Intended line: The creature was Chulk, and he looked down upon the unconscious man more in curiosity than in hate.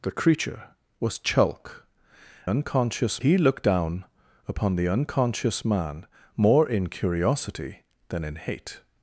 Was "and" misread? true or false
true